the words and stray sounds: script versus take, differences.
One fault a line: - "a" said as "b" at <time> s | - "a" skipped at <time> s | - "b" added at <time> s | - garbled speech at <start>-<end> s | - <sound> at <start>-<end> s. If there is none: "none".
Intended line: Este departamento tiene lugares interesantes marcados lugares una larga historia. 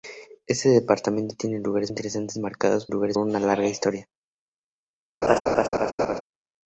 - laugh at 5.2-6.2 s